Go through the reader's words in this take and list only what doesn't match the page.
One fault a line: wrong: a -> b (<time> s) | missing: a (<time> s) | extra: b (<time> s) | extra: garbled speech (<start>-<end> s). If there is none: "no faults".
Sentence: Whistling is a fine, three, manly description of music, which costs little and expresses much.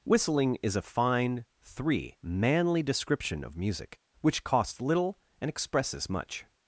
no faults